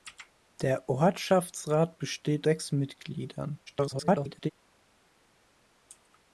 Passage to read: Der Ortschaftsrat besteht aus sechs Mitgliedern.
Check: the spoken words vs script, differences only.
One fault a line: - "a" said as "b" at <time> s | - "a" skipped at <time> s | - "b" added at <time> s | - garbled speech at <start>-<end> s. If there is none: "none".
- "aus" skipped at 2.5 s
- garbled speech at 3.7-4.5 s